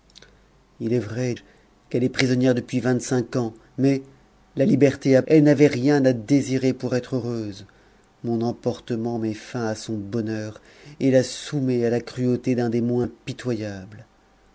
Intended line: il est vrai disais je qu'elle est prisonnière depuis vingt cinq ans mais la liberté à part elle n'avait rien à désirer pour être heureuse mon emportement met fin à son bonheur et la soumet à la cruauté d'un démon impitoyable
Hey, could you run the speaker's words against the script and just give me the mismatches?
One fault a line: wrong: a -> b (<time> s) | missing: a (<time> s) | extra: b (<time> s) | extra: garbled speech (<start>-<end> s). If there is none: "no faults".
missing: disais (1.4 s)
missing: part (5.2 s)